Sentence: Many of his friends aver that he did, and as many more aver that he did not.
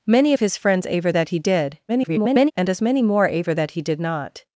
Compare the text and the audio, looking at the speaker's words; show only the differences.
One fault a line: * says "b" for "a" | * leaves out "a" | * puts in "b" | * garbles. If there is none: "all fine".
* garbles